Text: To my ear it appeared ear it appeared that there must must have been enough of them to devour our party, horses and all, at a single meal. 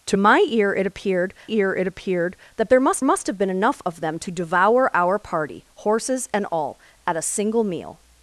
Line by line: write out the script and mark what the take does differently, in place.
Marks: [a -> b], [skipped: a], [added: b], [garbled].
To my ear it appeared ear it appeared that there must must have been enough of them to devour our party, horses and all, at a single meal.